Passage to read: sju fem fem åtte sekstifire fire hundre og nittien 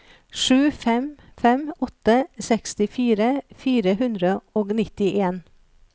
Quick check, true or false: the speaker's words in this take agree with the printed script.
true